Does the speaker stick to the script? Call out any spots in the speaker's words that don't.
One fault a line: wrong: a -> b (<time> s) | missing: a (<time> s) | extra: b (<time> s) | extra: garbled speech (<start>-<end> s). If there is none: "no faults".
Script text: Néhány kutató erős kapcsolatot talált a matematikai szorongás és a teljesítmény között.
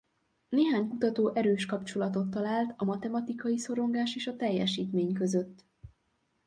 no faults